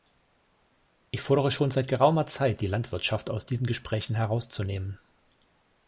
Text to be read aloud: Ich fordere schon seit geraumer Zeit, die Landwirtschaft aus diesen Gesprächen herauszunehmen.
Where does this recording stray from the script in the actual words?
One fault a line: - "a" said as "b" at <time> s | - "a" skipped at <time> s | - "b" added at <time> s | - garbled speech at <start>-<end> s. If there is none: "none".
none